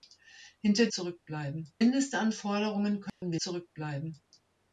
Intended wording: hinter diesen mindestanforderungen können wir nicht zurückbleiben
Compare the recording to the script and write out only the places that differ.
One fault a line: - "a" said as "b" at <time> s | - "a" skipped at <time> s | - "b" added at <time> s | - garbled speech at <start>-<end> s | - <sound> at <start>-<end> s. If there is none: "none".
- "diesen" said as "zurückbleiben" at 0.9 s
- dropout at 3.1-3.2 s
- "nicht" skipped at 3.4 s